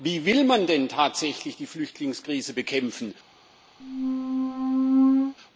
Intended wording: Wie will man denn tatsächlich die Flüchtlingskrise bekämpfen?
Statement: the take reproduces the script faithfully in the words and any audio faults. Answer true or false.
false